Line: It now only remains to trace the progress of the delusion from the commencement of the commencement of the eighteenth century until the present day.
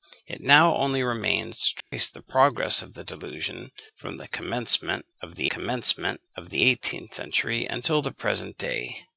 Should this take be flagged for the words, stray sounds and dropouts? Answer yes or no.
yes